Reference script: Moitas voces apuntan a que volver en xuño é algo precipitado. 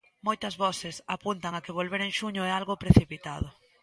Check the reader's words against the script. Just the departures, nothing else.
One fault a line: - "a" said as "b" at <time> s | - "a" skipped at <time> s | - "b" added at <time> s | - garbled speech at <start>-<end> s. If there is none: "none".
none